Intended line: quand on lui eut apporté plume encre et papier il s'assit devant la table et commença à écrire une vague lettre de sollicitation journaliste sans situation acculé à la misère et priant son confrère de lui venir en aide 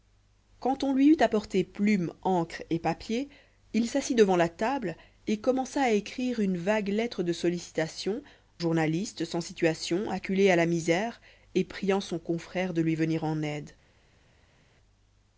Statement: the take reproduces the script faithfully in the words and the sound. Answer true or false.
true